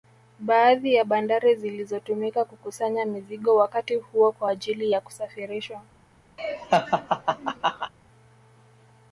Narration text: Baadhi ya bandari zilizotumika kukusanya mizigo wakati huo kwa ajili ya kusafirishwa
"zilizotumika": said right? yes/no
yes